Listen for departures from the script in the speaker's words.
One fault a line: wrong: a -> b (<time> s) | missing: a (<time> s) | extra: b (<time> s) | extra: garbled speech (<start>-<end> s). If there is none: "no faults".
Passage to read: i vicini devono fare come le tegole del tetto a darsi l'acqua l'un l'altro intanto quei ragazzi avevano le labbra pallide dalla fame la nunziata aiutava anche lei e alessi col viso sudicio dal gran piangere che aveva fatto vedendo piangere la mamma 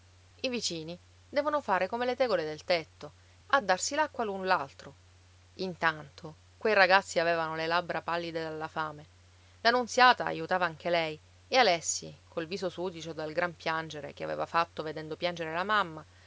no faults